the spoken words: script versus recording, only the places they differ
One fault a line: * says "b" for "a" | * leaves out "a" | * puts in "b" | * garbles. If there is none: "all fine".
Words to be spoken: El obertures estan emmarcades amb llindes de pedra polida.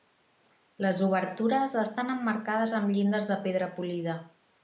* says "Les" for "El"